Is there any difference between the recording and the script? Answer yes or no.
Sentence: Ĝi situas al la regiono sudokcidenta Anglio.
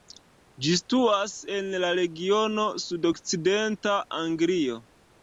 yes